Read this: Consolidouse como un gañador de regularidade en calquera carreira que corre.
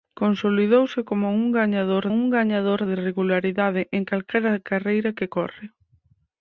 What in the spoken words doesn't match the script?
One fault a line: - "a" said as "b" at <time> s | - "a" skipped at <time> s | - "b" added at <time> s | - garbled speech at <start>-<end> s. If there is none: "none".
- "un gañador" added at 2.1 s